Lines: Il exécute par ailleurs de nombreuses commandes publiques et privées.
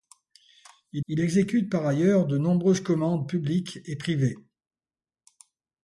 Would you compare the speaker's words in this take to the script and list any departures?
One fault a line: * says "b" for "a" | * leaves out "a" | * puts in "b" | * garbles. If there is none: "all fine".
* puts in "il"